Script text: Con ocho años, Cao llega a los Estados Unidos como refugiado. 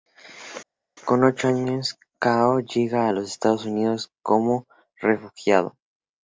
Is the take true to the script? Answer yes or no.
yes